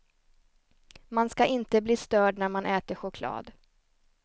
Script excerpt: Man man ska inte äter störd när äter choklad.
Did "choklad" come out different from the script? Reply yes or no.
no